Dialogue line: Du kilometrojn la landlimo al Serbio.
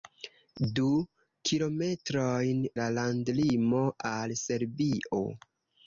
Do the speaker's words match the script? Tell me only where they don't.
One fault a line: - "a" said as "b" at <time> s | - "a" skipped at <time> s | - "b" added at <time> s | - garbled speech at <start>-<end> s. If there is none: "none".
none